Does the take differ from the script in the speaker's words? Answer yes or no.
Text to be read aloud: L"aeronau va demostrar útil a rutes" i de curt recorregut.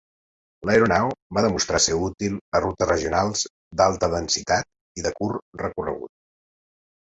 yes